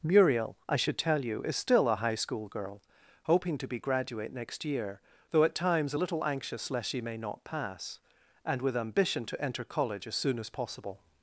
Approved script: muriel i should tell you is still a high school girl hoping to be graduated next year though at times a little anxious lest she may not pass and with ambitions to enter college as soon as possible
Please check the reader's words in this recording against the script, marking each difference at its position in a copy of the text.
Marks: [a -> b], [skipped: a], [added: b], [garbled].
muriel i should tell you is still a high school girl hoping to be [graduated -> graduate] next year though at times a little anxious lest she may not pass and with [ambitions -> ambition] to enter college as soon as possible